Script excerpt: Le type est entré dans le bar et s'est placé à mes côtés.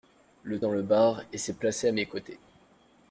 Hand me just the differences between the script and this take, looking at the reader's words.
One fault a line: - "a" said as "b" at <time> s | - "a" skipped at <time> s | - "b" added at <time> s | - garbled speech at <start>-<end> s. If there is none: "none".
- "type est entré" skipped at 0.6 s